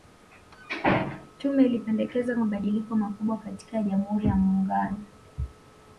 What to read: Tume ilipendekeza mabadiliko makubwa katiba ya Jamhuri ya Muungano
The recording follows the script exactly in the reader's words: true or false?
true